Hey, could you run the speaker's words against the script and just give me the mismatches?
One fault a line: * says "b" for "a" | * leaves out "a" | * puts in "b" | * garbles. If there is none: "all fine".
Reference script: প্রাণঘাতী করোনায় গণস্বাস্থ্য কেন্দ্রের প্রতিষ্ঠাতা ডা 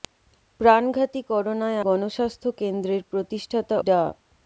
all fine